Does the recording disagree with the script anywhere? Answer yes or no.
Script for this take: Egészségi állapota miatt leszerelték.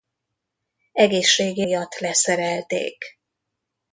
yes